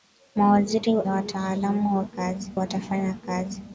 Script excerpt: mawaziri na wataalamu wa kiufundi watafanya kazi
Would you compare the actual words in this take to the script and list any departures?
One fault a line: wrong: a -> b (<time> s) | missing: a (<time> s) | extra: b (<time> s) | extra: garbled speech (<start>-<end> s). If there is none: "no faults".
missing: na (0.9 s)
wrong: kiufundi -> kazi (2.0 s)